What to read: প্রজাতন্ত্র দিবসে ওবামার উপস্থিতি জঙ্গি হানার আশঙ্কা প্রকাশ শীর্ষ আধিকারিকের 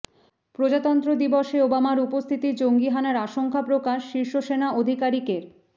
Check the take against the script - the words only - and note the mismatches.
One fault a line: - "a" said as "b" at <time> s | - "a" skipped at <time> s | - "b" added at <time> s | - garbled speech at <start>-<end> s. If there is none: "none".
- "সেনা" added at 4.4 s